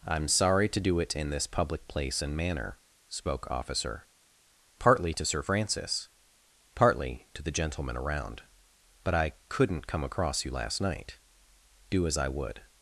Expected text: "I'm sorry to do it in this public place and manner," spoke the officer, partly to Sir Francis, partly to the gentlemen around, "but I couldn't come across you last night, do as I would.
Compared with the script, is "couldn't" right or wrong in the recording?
right